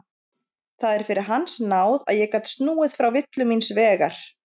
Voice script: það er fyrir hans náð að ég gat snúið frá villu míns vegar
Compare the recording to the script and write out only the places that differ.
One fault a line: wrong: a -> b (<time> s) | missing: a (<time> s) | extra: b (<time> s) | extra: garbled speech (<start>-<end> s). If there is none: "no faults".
no faults